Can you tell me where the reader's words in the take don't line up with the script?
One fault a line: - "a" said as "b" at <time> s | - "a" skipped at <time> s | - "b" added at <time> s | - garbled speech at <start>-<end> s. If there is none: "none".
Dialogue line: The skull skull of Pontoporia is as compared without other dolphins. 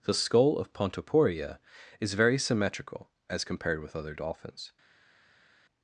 - "skull" skipped at 0.6 s
- "very symmetrical" added at 2.1 s
- "without" said as "with" at 3.8 s